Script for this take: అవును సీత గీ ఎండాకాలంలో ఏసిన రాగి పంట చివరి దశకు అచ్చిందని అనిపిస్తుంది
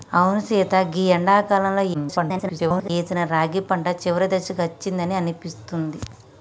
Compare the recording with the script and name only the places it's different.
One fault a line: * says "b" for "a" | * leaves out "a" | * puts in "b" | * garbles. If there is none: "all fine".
* garbles